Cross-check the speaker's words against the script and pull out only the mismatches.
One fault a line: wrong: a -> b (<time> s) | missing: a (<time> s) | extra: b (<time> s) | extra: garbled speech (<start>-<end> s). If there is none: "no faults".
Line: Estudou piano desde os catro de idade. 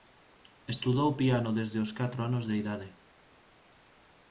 extra: anos (2.3 s)